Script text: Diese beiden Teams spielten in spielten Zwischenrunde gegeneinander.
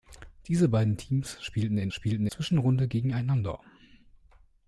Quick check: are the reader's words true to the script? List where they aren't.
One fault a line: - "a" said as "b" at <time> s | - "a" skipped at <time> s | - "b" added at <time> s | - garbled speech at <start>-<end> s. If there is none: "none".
none